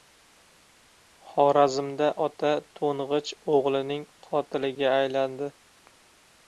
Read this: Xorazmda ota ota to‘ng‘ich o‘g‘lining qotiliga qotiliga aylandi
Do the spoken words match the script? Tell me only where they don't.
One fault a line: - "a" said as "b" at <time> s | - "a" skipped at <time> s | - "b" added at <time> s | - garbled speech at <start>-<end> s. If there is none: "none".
- "ota" skipped at 2.5 s
- "qotiliga" skipped at 5.0 s